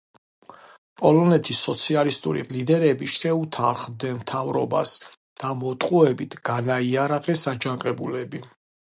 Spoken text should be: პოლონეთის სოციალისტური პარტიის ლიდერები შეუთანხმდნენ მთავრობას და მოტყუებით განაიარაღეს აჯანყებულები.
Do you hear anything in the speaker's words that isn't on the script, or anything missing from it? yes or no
yes